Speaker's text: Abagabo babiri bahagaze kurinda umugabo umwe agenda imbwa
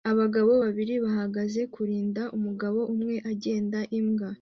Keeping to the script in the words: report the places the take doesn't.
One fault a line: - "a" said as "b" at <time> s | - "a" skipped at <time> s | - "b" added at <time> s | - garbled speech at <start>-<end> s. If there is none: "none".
none